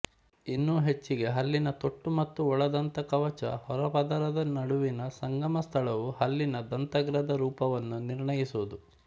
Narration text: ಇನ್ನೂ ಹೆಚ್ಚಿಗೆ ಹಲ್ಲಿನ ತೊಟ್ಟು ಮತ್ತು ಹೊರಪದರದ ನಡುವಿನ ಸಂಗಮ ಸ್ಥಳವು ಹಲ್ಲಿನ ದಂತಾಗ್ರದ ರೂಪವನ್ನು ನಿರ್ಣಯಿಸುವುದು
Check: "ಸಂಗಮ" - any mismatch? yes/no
no